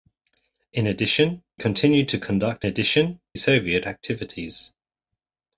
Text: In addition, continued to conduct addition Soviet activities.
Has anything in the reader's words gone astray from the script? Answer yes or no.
no